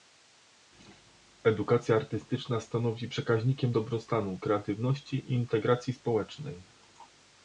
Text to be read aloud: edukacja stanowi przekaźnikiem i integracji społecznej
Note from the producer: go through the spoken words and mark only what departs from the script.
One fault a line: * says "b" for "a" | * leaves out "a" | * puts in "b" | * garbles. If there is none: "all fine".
* puts in "artystyczna"
* puts in "dobrostanu kreatywności"